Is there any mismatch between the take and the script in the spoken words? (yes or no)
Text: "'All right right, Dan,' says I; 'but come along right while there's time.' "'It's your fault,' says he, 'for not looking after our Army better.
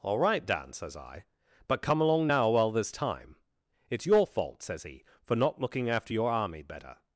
yes